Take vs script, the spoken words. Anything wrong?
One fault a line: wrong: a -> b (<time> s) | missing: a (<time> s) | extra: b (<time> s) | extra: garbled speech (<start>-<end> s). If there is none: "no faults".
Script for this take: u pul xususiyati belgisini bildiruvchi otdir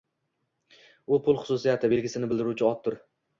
no faults